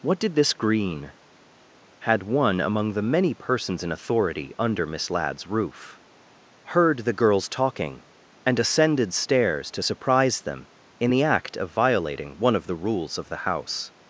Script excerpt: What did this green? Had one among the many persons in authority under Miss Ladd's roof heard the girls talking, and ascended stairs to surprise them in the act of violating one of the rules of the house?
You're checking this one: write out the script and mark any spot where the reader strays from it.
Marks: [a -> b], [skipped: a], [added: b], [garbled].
What did this green? Had one among the many persons in authority under Miss Ladd's roof heard the girls talking, and ascended stairs to surprise them in the act of violating one of the rules of the house?